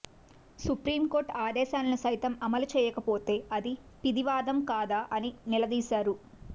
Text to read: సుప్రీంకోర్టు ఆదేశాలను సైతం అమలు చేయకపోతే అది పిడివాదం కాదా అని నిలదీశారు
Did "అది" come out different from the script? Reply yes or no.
no